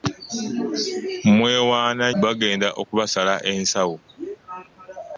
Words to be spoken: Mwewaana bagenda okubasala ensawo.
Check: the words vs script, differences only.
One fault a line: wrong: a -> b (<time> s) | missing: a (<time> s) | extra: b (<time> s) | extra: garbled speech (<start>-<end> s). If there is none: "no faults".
no faults